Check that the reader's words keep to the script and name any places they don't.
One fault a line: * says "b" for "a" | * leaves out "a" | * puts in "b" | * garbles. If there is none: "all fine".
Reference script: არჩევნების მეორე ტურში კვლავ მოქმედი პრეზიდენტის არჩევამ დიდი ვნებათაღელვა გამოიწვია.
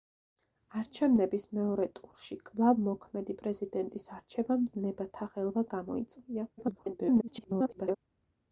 * leaves out "დიდი"
* garbles